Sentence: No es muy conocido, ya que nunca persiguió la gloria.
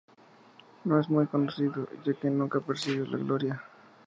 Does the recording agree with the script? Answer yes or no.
yes